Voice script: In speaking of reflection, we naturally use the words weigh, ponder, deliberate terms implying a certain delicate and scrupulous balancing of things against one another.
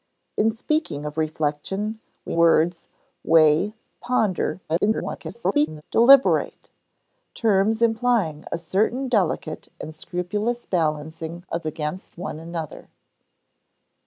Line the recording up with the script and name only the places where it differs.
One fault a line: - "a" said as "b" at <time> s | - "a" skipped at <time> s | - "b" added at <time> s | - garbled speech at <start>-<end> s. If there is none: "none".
- "naturally use the" skipped at 2.4 s
- garbled speech at 4.7-5.8 s
- "things" skipped at 11.6 s